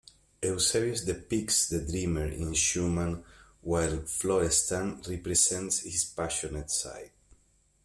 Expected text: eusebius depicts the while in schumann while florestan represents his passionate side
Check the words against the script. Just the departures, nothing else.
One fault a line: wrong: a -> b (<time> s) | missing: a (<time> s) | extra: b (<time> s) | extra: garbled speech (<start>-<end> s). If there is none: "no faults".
wrong: while -> dreamer (1.9 s)